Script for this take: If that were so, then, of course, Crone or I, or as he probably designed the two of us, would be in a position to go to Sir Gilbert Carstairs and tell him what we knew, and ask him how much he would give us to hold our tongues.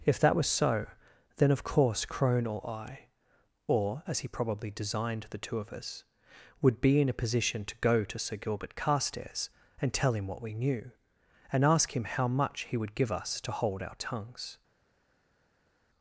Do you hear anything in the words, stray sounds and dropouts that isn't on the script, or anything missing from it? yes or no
yes